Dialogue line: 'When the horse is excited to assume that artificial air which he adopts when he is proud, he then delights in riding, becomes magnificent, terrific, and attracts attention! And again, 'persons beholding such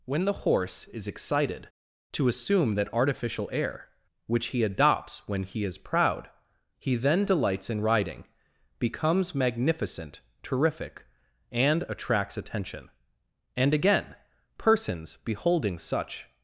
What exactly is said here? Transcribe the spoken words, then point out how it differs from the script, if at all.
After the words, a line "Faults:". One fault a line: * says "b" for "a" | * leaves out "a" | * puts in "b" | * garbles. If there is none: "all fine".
'When the horse is excited to assume that artificial air which he adopts when he is proud, he then delights in riding, becomes magnificent, terrific, and attracts attention! And again, 'persons beholding such
Faults:
all fine